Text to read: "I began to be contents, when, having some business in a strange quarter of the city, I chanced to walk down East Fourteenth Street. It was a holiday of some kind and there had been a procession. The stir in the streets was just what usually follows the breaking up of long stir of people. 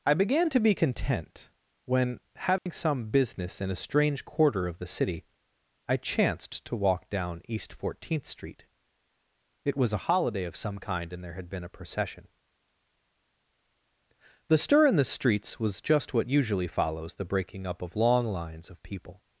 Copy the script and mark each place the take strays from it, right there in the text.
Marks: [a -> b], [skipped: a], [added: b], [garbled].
"I began to be [contents, -> content] when, having some business in a strange quarter of the city, I chanced to walk down East Fourteenth Street. It was a holiday of some kind and there had been a procession. The stir in the streets was just what usually follows the breaking up of long [stir -> lines] of people.